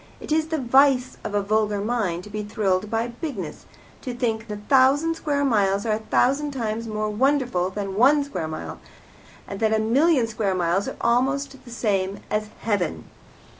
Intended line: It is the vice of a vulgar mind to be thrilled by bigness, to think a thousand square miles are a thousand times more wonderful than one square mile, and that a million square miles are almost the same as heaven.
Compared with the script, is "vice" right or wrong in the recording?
right